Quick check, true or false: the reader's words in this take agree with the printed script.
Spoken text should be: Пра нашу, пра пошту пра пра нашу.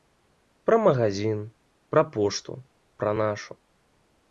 false